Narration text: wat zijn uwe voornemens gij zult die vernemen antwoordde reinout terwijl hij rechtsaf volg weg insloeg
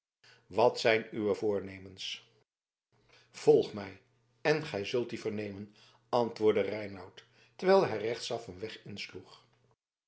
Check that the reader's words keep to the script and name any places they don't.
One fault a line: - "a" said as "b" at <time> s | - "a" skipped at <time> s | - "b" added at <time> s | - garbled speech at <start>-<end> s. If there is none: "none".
- "volg mij en" added at 3.3 s
- "volg" said as "een" at 8.5 s